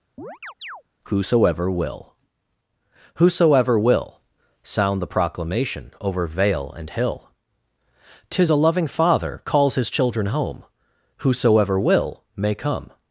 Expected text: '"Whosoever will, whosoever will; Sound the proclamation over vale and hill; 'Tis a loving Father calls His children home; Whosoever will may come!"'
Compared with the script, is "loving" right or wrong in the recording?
right